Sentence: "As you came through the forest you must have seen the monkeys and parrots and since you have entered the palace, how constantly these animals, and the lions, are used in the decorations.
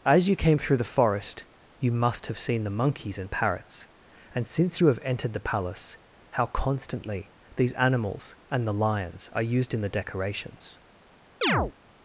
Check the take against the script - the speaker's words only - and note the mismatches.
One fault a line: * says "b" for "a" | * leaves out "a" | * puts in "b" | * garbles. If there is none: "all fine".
all fine